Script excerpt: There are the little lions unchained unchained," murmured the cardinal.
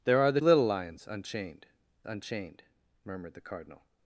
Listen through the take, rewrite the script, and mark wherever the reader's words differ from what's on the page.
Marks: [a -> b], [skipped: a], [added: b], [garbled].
There are the little lions unchained unchained," murmured the cardinal.